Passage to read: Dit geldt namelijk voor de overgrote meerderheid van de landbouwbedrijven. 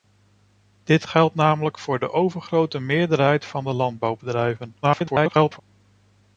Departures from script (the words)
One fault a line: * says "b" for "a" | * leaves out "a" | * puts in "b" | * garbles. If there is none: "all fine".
* garbles